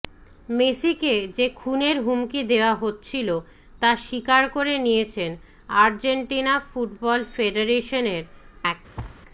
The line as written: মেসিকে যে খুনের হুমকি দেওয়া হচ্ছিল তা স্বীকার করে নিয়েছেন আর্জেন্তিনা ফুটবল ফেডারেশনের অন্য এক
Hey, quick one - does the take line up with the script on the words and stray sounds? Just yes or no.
no